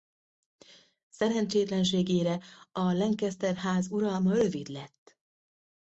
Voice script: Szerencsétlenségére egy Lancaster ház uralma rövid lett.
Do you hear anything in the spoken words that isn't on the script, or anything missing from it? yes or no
yes